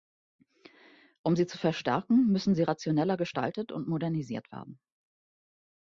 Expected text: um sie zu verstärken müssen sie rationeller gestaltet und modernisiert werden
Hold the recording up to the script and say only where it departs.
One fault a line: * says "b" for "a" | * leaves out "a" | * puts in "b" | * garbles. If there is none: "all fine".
all fine